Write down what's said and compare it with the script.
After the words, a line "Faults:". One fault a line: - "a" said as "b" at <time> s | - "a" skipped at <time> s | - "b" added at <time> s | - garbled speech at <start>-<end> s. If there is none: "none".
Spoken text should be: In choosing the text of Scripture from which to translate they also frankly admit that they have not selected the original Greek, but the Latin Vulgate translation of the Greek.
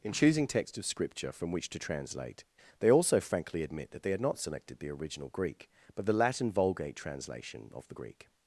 In choosing text of Scripture from which to translate they also frankly admit that they had not selected the original Greek, but the Latin Vulgate translation of the Greek.
Faults:
- "the" skipped at 0.5 s
- "have" said as "had" at 4.1 s